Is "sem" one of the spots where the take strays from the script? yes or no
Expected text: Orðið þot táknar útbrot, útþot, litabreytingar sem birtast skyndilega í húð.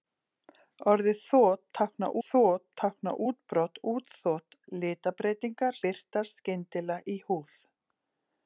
yes